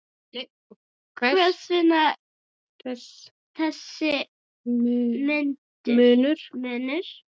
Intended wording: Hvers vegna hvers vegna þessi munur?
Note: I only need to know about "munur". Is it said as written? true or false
true